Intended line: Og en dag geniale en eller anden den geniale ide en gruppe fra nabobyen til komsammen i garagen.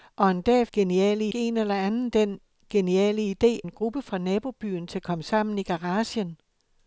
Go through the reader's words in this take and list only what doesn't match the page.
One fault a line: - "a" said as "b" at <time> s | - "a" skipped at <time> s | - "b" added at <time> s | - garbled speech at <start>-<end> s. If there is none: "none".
none